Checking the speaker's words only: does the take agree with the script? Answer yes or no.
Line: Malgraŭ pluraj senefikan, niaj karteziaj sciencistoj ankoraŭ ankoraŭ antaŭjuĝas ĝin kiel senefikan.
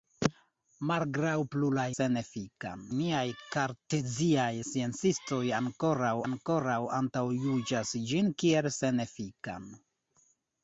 yes